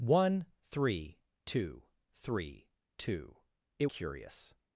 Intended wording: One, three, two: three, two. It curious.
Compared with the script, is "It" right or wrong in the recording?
right